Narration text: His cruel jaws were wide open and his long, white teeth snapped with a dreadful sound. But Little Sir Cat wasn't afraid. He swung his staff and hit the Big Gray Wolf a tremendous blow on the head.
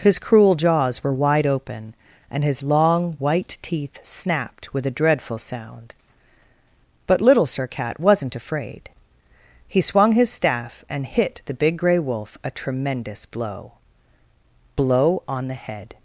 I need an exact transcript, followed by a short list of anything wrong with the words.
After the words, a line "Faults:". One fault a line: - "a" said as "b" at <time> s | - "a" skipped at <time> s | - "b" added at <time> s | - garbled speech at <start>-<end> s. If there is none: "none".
His cruel jaws were wide open and his long, white teeth snapped with a dreadful sound. But Little Sir Cat wasn't afraid. He swung his staff and hit the Big Gray Wolf a tremendous blow blow on the head.
Faults:
- "blow" added at 14.8 s